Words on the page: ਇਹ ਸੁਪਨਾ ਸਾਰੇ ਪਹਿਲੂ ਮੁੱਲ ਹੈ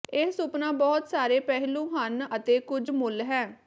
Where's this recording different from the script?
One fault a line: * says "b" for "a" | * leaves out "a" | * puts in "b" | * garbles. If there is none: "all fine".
* puts in "ਬਹੁਤ"
* puts in "ਹਨ ਅਤੇ ਕੁਝ"